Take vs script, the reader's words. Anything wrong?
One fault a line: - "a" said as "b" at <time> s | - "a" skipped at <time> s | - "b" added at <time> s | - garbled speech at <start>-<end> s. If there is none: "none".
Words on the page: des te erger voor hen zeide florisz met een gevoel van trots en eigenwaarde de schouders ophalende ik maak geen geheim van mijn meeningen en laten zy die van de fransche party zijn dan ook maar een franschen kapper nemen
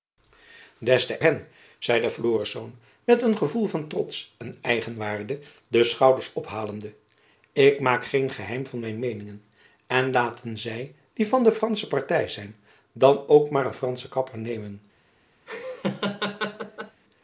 - "erger voor" skipped at 1.2 s